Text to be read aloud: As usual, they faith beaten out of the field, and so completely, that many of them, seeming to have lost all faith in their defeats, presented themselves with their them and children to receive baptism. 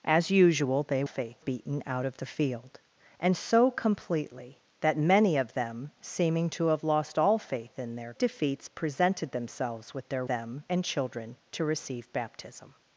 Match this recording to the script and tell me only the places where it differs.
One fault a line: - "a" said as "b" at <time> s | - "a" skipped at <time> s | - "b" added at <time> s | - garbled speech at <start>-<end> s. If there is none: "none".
none